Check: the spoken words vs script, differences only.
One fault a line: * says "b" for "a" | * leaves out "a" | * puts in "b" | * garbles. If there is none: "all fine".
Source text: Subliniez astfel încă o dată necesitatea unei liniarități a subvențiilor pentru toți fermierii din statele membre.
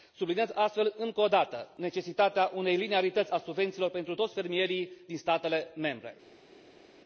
all fine